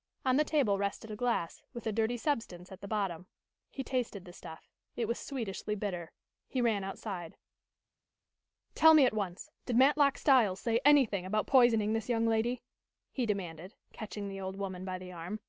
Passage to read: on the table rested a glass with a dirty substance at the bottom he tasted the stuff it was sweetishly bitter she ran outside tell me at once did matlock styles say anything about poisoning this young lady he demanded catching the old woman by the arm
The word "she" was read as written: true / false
false